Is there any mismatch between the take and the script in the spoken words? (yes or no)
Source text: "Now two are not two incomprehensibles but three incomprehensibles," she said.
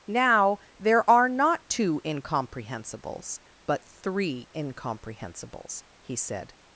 yes